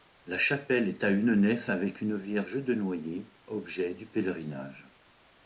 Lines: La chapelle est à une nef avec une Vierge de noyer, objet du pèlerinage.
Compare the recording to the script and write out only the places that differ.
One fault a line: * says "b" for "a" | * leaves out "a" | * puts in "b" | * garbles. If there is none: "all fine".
all fine